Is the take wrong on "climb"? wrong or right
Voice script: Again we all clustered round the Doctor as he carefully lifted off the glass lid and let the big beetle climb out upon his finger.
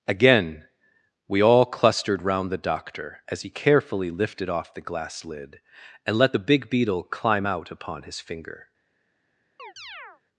right